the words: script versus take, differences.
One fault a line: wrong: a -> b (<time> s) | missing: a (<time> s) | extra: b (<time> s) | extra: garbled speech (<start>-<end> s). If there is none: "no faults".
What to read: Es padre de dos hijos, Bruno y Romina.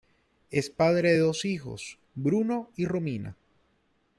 no faults